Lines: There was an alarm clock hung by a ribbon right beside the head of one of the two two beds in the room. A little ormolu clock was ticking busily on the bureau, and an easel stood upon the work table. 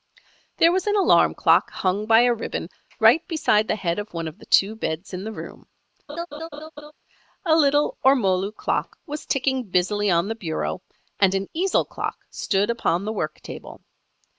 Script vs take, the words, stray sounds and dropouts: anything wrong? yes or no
yes